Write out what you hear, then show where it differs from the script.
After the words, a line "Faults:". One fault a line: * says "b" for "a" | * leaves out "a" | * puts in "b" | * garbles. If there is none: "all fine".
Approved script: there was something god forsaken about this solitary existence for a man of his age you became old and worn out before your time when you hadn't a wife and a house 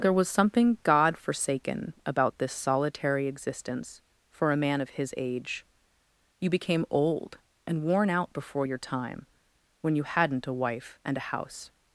there was something god forsaken about this solitary existence for a man of his age you became old and worn out before your time when you hadn't a wife and a house
Faults:
all fine